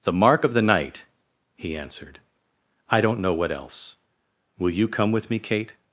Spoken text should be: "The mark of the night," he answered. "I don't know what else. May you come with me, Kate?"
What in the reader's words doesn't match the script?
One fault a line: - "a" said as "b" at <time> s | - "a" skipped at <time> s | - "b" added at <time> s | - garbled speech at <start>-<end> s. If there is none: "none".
- "May" said as "Will" at 4.6 s